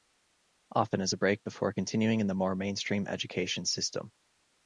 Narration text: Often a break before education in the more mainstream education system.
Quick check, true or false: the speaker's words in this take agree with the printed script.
false